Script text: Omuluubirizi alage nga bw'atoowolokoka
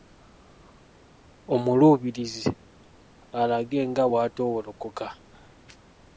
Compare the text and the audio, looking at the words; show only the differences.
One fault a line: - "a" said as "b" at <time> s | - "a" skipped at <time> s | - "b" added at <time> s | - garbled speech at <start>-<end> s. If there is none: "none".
none